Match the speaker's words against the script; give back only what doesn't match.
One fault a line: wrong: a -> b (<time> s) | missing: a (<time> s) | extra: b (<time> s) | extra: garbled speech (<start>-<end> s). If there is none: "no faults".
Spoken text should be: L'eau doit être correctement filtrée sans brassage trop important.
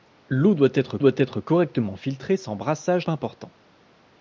extra: doit être (1.0 s)
missing: trop (3.1 s)